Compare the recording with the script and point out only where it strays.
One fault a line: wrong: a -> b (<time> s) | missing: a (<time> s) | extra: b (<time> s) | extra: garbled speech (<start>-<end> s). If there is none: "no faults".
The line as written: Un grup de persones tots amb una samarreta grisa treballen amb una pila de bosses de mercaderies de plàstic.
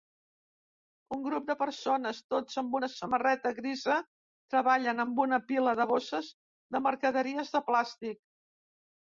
no faults